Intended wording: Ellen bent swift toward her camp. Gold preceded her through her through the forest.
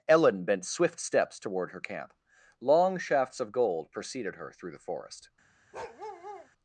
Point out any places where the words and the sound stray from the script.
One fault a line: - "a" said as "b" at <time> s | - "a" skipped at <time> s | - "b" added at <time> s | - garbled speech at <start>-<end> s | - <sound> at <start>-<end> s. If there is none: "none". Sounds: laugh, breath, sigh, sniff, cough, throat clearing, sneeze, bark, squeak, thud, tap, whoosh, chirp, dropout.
- "steps" added at 1.0 s
- "Long shafts of" added at 2.6 s
- "her through" skipped at 4.7 s
- bark at 5.7-6.5 s